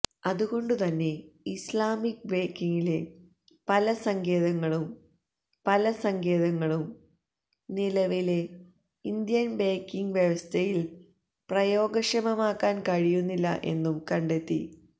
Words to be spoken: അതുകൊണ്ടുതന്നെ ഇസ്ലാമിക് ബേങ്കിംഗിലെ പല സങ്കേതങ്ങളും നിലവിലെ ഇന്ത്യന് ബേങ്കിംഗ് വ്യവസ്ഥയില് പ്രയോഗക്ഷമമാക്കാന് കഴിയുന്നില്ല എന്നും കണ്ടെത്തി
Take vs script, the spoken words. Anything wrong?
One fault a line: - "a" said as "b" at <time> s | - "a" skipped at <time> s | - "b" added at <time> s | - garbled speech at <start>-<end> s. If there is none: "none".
- "പല സങ്കേതങ്ങളും" added at 5.6 s